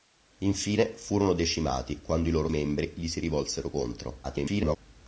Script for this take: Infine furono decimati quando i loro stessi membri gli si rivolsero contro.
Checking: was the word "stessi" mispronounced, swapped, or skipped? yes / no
yes